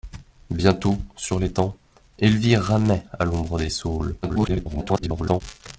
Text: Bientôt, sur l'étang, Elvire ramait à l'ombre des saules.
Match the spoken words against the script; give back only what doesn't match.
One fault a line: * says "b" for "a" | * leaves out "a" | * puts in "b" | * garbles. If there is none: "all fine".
* garbles